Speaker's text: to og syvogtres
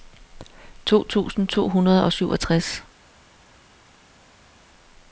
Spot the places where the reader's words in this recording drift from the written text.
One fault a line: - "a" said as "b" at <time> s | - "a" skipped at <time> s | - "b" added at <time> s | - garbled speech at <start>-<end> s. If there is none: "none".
- "tusind to hundrede" added at 1.1 s